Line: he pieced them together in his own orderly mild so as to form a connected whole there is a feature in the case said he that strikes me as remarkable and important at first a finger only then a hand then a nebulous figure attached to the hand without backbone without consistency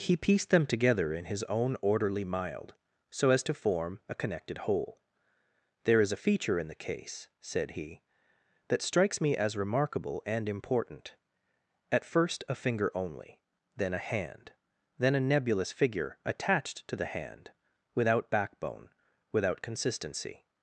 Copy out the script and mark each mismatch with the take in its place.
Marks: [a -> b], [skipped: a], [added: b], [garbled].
he pieced them together in his own orderly mild so as to form a connected whole there is a feature in the case said he that strikes me as remarkable and important at first a finger only then a hand then a nebulous figure attached to the hand without backbone without consistency